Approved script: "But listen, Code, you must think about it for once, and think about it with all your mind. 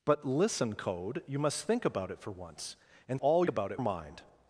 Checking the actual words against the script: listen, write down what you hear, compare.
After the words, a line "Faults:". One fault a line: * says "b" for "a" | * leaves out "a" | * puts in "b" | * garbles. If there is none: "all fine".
"But listen, Code, you must think about it for once, and all about it mind.
Faults:
* says "all" for "think"
* leaves out "with all your"